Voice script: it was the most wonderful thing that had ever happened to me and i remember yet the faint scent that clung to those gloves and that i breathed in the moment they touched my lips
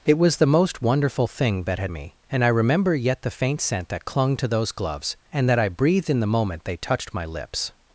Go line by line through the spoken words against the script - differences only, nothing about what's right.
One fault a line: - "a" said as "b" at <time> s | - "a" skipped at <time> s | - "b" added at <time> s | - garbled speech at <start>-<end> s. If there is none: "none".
- "ever happened to" skipped at 1.9 s